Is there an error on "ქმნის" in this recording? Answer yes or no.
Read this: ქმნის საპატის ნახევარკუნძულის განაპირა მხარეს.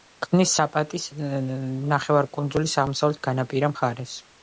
no